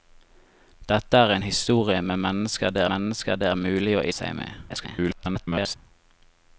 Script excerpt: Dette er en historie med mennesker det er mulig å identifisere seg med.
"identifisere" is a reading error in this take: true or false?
true